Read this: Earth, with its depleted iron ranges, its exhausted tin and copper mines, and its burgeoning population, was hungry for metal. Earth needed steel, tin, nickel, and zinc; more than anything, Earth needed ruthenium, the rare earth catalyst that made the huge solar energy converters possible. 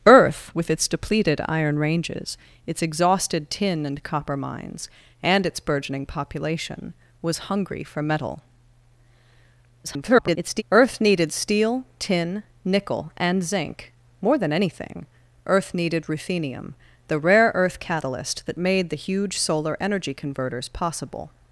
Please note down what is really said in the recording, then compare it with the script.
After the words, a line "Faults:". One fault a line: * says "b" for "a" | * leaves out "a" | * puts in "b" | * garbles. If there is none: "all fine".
Earth, with its depleted iron ranges, its exhausted tin and copper mines, and its burgeoning population, was hungry for metal. [garbled] Earth needed steel, tin, nickel, and zinc; more than anything, Earth needed ruthenium, the rare earth catalyst that made the huge solar energy converters possible.
Faults:
* garbles